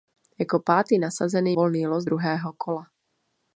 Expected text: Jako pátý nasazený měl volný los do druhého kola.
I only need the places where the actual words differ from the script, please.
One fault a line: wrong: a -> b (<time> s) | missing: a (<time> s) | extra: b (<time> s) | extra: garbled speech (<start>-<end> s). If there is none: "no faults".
missing: měl (1.6 s)
missing: do (2.0 s)